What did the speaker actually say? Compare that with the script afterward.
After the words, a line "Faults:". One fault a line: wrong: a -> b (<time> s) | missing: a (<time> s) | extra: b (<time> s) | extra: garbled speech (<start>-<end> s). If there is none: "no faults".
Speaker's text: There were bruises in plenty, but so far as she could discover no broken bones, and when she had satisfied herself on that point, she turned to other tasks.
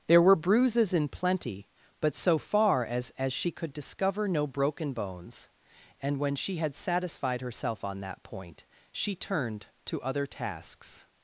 There were bruises in plenty, but so far as as she could discover no broken bones, and when she had satisfied herself on that point, she turned to other tasks.
Faults:
extra: as (3.2 s)